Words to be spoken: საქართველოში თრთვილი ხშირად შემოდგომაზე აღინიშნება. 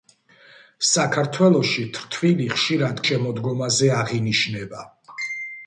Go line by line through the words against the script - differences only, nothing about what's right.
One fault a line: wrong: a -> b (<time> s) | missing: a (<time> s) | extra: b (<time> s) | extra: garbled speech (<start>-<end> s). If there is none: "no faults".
no faults